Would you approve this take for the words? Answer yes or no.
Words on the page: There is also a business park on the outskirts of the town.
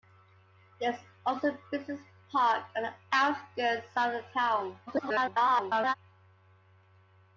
no